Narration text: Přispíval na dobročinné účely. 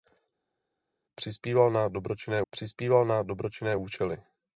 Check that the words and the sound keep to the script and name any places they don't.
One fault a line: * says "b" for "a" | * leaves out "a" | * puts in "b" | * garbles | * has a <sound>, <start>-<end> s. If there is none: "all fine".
* puts in "přispíval na dobročinné"